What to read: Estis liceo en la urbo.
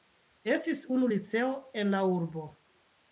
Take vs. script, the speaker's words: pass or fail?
fail